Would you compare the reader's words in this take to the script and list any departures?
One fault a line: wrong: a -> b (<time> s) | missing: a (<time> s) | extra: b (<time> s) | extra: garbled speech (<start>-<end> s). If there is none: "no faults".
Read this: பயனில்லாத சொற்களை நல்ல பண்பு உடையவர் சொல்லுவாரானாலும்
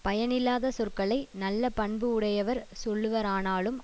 no faults